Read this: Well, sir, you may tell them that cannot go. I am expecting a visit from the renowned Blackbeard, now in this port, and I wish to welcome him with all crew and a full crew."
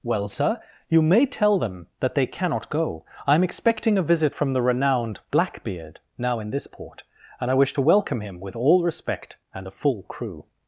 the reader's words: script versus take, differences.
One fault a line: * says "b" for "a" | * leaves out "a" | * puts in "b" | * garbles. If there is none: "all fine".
* puts in "they"
* says "respect" for "crew"